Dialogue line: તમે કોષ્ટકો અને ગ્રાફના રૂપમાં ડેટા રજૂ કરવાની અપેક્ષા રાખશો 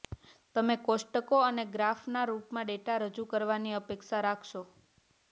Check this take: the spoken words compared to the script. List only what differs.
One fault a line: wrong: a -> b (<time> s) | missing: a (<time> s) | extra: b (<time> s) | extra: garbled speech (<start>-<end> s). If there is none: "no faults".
no faults